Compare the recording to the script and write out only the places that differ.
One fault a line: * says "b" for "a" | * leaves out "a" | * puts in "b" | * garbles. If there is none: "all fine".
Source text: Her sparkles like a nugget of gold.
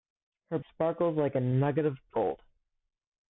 all fine